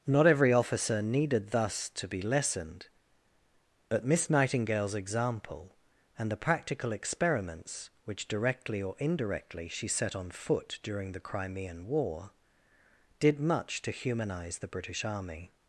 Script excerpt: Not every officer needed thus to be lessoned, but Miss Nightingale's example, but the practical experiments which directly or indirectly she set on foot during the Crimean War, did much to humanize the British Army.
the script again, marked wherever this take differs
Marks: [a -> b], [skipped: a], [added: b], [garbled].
Not every officer needed thus to be lessoned, but Miss Nightingale's example, [but -> and] the practical experiments which directly or indirectly she set on foot during the Crimean War, did much to humanize the British Army.